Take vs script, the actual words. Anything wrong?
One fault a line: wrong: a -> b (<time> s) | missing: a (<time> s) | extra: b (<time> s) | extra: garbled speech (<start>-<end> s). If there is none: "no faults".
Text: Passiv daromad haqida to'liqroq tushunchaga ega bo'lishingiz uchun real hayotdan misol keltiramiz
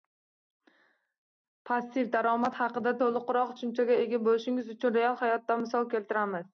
no faults